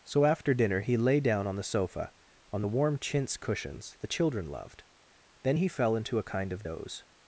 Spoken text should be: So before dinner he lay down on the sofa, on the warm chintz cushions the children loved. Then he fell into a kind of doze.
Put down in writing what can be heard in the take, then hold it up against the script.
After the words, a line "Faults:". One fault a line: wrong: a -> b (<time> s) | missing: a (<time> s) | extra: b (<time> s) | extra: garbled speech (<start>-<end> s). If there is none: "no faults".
So after dinner he lay down on the sofa, on the warm chintz cushions the children loved. Then he fell into a kind of doze.
Faults:
wrong: before -> after (0.2 s)